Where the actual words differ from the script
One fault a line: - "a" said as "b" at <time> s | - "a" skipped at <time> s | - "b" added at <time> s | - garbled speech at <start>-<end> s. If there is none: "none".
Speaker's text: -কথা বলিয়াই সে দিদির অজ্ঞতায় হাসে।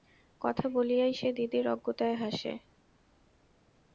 none